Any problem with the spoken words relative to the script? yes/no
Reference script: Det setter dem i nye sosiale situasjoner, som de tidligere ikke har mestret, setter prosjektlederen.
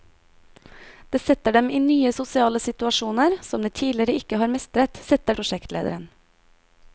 no